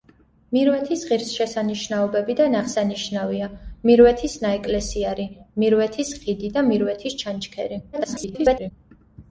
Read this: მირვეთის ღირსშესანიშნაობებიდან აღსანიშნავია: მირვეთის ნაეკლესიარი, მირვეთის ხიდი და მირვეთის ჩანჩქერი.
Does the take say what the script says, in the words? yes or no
no